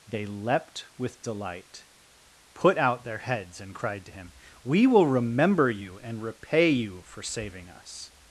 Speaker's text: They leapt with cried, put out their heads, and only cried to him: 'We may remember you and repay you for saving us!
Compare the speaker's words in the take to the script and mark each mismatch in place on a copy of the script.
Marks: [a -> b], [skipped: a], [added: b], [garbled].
They leapt with [cried, -> delight] put out their heads, and [skipped: only] cried to him: 'We [may -> will] remember you and repay you for saving us!